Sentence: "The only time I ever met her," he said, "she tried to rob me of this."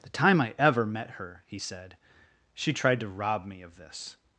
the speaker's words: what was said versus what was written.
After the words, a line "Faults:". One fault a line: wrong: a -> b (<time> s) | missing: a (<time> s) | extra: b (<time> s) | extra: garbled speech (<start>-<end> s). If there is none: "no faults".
"The time I ever met her," he said, "she tried to rob me of this."
Faults:
missing: only (0.1 s)